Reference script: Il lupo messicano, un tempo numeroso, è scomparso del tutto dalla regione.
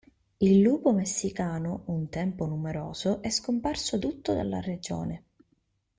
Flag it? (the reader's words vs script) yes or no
yes